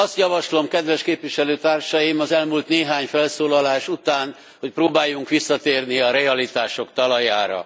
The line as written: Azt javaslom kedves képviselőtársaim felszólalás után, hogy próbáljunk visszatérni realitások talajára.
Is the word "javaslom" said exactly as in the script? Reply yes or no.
yes